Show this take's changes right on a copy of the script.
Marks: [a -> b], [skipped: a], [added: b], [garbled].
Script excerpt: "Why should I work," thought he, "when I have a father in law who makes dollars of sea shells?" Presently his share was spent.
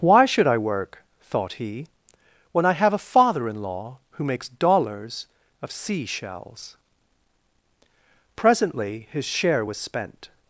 "Why should I work," thought he, "when I have a father in law who makes dollars of sea shells?" Presently his share was spent.